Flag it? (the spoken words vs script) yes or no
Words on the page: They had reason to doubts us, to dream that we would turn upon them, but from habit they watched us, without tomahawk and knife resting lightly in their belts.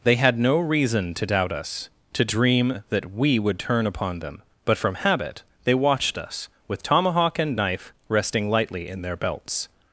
yes